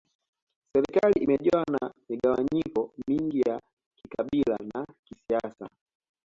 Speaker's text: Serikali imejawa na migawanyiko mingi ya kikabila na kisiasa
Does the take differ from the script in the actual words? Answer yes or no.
no